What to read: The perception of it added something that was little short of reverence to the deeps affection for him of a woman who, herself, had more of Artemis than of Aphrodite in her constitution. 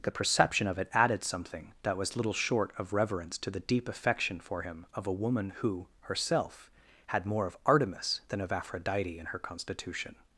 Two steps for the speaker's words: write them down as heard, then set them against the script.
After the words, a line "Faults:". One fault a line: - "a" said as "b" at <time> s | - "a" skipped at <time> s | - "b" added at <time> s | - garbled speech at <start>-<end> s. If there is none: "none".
The perception of it added something that was little short of reverence to the deep affection for him of a woman who, herself, had more of Artemis than of Aphrodite in her constitution.
Faults:
- "deeps" said as "deep" at 3.6 s